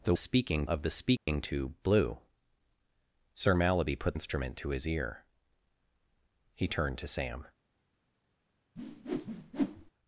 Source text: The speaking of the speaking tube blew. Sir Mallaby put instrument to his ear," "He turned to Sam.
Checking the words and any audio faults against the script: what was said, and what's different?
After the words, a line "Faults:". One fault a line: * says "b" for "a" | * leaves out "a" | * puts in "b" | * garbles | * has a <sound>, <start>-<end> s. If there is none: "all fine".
The speaking of the speaking tube blew. Sir Mallaby put instrument to his ear," "He turned to Sam.
Faults:
* has a dropout, 1.2-1.3 s
* has a whoosh, 8.8-9.9 s